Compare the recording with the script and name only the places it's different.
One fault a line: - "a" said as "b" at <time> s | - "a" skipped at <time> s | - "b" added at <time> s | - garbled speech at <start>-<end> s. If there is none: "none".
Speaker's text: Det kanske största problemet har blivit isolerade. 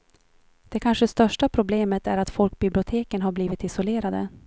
- "är att folkbiblioteken" added at 2.1 s